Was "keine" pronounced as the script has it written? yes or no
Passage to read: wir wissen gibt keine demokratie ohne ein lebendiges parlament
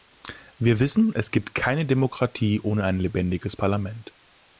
yes